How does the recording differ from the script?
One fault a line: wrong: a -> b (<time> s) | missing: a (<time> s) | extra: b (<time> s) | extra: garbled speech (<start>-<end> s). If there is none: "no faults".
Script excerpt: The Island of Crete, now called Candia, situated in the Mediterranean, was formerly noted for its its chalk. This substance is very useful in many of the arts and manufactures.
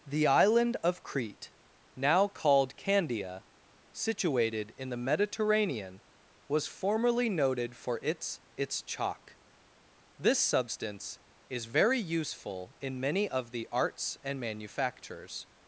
no faults